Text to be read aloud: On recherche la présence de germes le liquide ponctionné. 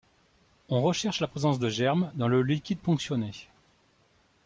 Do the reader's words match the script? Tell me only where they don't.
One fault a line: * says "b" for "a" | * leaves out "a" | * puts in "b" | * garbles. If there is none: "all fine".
* puts in "dans"